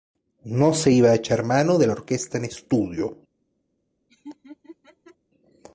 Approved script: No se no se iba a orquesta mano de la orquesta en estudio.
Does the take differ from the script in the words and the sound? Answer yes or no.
yes